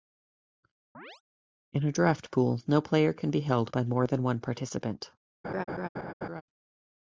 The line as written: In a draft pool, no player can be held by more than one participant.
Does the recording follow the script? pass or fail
pass